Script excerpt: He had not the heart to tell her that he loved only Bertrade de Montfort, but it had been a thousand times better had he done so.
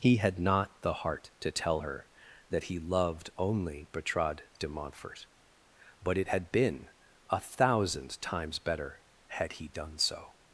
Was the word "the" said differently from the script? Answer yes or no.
no